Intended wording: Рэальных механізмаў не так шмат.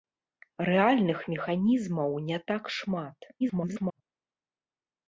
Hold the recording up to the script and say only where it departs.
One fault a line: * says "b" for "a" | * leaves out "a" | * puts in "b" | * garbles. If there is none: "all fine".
* garbles